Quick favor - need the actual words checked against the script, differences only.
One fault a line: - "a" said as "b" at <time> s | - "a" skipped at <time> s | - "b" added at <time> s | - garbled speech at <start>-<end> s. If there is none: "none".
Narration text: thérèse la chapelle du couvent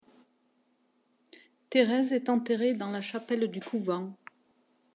- "est enterrée dans" added at 2.1 s